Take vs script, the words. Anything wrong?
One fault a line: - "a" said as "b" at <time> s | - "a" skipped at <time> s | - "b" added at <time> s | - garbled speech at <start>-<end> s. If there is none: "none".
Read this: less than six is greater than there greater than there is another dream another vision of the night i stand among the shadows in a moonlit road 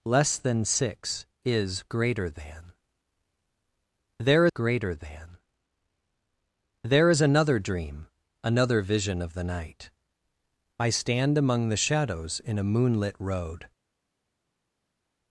none